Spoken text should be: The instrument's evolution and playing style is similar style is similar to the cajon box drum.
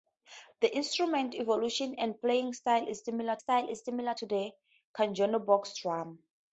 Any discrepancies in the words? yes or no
no